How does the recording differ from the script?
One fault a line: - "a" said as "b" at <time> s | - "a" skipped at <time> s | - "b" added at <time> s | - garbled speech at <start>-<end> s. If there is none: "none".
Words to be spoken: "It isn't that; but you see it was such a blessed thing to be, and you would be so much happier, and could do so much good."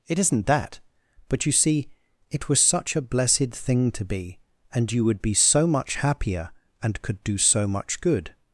none